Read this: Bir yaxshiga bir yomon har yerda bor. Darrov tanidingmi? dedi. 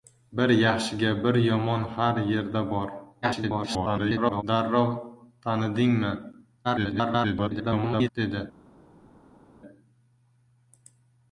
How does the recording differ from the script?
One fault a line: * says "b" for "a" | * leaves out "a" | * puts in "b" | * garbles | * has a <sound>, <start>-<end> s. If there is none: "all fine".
* garbles
* garbles